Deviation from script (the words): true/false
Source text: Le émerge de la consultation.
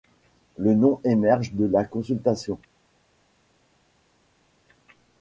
true